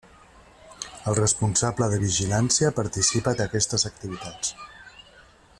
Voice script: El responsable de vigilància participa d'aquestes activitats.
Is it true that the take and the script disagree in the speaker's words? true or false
false